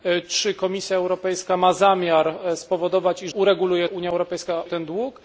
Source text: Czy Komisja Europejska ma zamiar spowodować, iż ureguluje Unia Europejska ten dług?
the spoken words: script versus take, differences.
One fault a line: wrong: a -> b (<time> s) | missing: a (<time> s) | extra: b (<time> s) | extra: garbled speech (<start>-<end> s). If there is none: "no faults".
no faults